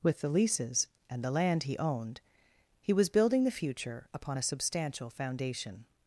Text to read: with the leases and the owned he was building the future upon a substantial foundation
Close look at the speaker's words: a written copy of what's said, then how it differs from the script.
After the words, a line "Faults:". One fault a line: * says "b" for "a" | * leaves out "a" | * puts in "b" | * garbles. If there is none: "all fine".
with the leases and the land he owned he was building the future upon a substantial foundation
Faults:
* puts in "land he"